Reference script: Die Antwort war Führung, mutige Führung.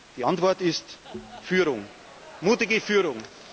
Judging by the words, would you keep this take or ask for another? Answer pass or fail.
fail